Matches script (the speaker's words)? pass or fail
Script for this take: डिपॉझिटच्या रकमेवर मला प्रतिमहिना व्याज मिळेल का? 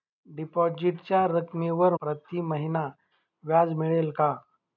fail